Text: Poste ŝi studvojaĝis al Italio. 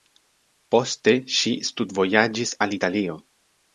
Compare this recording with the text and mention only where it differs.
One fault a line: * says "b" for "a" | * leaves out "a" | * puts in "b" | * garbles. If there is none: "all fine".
all fine